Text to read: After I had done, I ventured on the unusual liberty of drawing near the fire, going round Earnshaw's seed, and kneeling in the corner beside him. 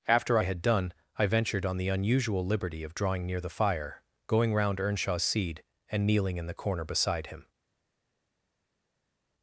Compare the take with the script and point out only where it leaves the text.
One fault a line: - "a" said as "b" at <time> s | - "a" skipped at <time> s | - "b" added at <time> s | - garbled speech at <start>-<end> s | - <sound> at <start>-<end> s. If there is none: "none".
none